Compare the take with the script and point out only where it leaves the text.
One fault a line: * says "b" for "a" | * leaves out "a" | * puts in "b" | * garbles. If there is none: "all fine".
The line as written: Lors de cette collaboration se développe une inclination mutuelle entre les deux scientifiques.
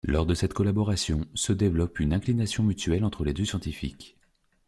all fine